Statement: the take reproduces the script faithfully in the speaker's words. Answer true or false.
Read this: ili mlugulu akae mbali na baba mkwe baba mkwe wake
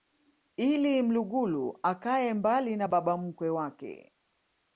false